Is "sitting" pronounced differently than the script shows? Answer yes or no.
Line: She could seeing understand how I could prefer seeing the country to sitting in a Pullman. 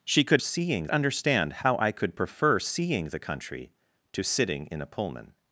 no